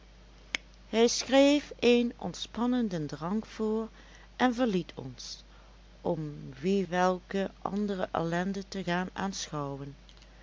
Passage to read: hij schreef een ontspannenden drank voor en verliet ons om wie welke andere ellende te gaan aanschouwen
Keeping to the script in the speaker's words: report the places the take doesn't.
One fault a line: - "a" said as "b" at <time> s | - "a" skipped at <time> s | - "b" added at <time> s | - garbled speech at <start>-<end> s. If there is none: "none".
none